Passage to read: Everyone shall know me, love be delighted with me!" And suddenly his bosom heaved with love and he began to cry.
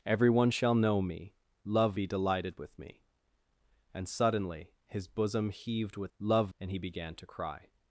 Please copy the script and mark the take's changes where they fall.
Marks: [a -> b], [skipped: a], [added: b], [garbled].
Everyone shall know me, love be delighted with me!" And suddenly his bosom heaved with love and he began to cry.